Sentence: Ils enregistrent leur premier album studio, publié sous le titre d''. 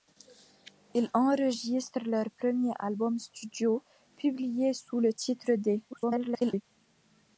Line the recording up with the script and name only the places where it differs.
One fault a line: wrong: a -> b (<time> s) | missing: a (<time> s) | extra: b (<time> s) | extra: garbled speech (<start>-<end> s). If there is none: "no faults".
extra: garbled speech (5.9-6.6 s)